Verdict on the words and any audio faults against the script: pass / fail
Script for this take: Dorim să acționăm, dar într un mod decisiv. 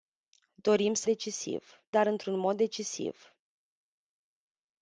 fail